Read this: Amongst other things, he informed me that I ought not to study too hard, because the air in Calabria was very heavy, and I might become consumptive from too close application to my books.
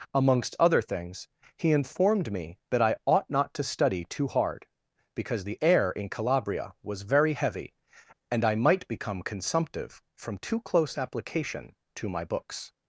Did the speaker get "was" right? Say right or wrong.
right